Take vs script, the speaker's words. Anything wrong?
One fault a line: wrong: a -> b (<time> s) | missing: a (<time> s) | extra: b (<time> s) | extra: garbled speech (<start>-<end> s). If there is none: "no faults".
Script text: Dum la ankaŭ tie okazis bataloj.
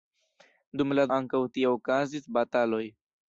no faults